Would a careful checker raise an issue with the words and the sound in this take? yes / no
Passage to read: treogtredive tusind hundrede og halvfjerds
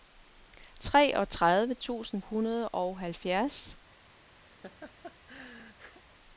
yes